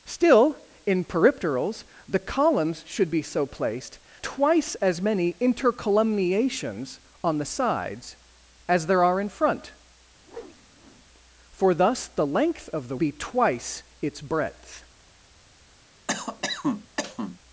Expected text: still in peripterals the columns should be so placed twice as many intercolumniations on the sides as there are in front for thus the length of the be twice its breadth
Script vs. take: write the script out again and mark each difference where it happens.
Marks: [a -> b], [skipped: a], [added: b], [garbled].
still in peripterals the columns should be so placed twice as many intercolumniations on the sides as there are in front for thus the length of the be twice its breadth